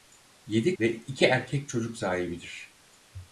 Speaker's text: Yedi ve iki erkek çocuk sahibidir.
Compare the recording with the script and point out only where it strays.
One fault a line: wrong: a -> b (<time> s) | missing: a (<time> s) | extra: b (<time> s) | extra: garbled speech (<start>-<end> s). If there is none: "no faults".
no faults